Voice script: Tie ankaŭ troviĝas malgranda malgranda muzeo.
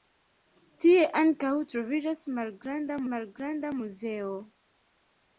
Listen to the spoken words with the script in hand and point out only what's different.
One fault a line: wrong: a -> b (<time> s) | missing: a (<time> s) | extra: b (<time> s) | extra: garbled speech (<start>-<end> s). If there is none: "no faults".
no faults